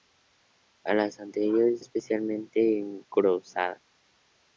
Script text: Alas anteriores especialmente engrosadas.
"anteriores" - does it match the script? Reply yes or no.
yes